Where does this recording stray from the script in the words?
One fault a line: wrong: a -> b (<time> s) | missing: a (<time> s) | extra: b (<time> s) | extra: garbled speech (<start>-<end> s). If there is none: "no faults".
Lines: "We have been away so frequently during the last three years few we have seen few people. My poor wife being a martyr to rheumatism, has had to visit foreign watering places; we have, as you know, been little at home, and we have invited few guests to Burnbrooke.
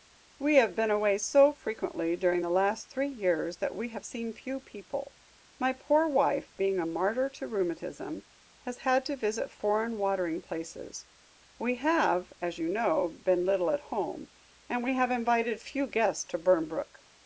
wrong: few -> that (3.6 s)